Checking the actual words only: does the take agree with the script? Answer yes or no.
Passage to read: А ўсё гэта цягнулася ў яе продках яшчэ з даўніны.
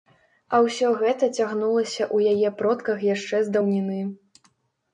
yes